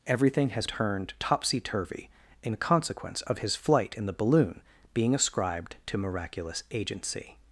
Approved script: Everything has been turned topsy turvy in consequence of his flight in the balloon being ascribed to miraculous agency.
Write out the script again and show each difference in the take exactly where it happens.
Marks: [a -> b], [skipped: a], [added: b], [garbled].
Everything has [skipped: been] turned topsy turvy in consequence of his flight in the balloon being ascribed to miraculous agency.